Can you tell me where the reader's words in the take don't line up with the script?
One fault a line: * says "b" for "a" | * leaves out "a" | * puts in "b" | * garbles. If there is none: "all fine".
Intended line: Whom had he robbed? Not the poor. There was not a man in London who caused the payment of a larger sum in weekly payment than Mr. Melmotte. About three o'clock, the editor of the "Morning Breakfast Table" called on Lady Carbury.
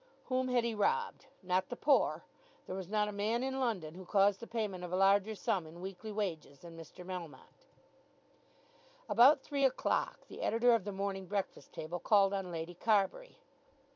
* says "wages" for "payment"